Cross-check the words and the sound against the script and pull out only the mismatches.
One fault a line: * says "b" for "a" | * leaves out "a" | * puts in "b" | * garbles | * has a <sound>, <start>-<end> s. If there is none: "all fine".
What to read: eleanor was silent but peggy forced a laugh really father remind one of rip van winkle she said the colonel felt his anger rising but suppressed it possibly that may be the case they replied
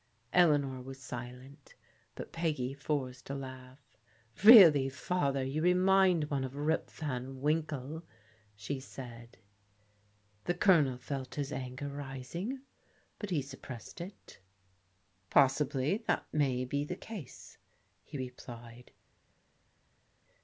* puts in "you"
* puts in "he"
* says "he" for "they"